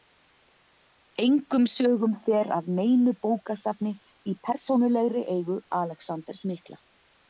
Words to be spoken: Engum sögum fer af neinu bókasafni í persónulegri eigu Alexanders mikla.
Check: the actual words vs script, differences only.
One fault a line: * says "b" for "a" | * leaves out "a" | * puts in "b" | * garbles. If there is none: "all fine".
all fine